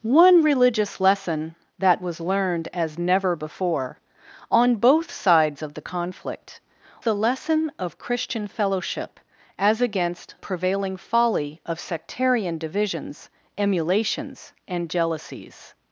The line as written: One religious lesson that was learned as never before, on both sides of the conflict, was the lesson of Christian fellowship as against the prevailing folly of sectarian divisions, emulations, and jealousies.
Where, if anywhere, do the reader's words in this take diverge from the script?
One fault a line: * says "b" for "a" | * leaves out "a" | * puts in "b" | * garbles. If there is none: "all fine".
* leaves out "was"
* leaves out "the"